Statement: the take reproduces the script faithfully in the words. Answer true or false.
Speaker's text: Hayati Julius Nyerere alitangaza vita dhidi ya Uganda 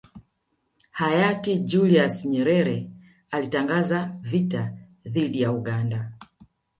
true